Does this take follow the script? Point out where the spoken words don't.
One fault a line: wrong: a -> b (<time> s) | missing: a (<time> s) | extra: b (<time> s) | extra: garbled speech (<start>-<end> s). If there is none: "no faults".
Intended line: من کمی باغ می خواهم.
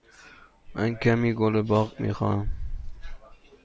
extra: گل (1.3 s)